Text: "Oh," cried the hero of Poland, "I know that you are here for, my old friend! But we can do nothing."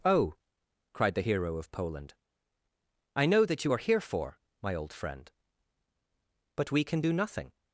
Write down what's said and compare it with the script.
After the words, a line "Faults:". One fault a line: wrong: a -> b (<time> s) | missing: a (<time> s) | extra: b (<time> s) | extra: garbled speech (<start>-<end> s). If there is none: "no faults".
"Oh," cried the hero of Poland, "I know that you are here for, my old friend! But we can do nothing."
Faults:
no faults